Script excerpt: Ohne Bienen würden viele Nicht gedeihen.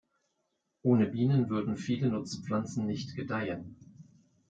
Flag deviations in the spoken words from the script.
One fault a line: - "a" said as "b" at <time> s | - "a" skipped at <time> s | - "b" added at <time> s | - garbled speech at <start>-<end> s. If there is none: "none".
- "Nutzpflanzen" added at 2.1 s